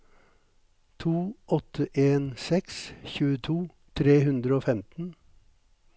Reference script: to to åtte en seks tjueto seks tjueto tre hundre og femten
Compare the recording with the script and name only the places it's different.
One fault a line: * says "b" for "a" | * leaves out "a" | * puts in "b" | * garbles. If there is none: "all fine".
* leaves out "to"
* leaves out "seks tjueto"